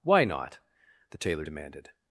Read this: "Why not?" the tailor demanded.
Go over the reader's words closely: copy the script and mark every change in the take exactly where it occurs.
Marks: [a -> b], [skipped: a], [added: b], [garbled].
"Why not?" the tailor demanded.